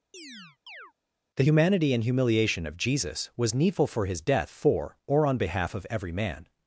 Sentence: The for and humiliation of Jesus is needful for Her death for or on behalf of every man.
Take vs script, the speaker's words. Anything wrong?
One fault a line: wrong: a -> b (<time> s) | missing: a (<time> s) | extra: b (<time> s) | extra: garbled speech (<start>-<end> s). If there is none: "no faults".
wrong: for -> humanity (1.4 s)
wrong: is -> was (3.4 s)
wrong: Her -> His (4.0 s)